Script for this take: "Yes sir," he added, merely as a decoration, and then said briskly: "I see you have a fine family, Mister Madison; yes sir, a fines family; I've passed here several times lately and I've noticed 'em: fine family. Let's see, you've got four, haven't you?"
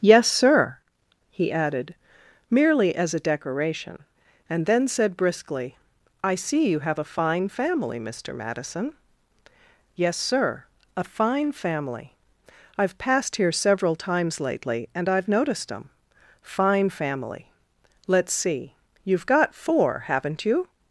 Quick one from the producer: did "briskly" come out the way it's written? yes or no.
yes